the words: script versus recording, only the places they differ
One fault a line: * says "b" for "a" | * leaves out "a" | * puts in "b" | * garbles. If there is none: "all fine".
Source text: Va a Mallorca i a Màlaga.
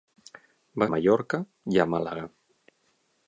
all fine